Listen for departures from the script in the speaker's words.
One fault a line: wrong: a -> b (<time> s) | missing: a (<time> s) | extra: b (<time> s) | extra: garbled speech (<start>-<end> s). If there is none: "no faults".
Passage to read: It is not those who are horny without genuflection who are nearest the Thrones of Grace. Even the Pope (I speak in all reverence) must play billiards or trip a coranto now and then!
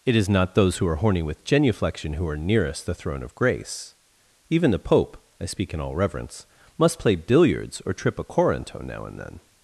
wrong: without -> with (1.2 s)
wrong: Thrones -> Throne (3.0 s)